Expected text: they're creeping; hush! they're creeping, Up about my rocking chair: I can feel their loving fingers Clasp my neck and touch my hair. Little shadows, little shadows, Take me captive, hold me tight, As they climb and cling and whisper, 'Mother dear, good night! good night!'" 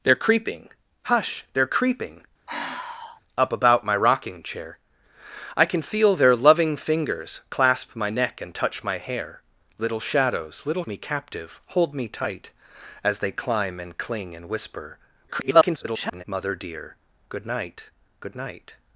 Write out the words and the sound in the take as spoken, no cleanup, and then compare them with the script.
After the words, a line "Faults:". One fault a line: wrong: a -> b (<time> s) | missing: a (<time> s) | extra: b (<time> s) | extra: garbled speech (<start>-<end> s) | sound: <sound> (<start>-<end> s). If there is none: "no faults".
they're creeping; hush! they're creeping, Up about my rocking chair: I can feel their loving fingers Clasp my neck and touch my hair. Little shadows, little me captive, hold me tight, As they climb and cling and whisper, [garbled] 'Mother dear, good night! good night!'"
Faults:
sound: sigh (2.5-3.2 s)
missing: shadows Take (10.8 s)
extra: garbled speech (15.3-16.2 s)